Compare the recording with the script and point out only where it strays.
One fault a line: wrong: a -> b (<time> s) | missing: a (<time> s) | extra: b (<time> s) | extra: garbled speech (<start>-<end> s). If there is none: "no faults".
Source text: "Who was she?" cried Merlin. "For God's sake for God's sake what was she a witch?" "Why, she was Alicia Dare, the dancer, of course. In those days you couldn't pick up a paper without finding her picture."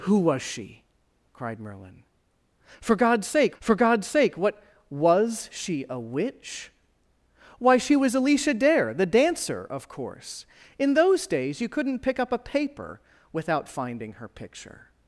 no faults